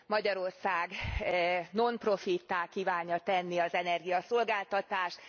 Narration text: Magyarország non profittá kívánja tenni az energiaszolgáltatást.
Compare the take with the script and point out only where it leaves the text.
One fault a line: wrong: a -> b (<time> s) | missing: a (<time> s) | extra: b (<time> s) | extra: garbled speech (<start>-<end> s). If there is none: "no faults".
no faults